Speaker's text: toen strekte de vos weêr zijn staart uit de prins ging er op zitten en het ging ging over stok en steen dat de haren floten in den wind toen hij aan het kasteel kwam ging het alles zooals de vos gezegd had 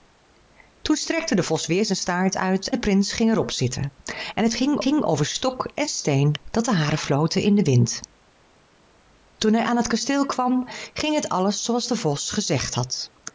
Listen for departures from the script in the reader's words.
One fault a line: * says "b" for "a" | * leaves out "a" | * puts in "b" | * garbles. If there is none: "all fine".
all fine